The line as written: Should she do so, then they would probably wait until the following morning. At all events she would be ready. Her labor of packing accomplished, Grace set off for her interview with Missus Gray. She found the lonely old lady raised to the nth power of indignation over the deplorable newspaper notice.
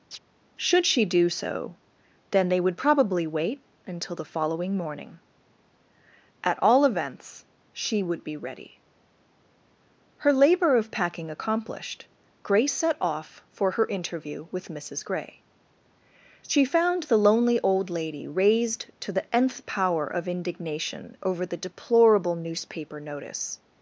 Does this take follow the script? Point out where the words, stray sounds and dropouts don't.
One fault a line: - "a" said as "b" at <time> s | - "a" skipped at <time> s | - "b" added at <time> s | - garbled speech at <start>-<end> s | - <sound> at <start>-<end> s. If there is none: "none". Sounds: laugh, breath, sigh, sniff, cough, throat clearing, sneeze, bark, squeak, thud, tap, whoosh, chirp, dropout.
- chirp at 0.1-0.2 s